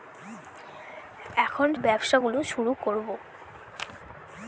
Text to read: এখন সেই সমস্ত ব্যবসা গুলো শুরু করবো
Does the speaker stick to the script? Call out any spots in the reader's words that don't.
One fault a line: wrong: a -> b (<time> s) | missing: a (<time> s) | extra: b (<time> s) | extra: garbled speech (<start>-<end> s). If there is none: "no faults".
missing: সেই সমস্ত (1.7 s)